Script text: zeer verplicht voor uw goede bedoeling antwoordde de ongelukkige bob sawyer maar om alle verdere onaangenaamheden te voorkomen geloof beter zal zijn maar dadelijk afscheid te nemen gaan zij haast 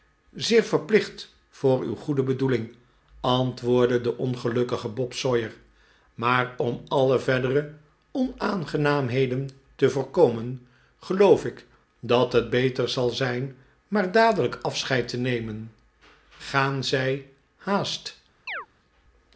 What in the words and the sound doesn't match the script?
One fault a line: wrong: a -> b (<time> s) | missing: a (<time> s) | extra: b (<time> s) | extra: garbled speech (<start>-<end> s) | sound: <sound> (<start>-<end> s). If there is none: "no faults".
extra: ik dat het (11.4 s)
sound: chirp (18.5-18.7 s)